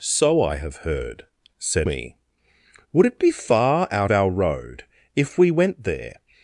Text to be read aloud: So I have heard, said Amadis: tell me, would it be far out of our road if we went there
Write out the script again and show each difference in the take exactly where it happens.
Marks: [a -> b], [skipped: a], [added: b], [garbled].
So I have heard, said [skipped: Amadis: tell] me, would it be far out [skipped: of] our road if we went there